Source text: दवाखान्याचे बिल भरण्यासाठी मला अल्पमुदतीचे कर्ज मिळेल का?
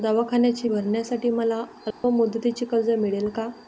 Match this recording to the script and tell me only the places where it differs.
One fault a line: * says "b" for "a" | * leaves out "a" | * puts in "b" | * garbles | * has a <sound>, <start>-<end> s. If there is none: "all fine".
* leaves out "बिल"
* has a dropout, 1.9-2.0 s